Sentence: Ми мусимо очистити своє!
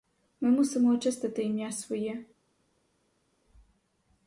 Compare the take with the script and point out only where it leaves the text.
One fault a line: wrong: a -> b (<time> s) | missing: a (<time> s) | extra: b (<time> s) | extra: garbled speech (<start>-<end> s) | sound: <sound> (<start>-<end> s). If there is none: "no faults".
extra: ім'я (1.4 s)